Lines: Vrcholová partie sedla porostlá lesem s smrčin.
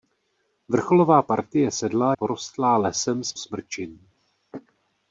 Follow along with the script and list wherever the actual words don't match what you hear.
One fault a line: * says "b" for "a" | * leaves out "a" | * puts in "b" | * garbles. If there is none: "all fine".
all fine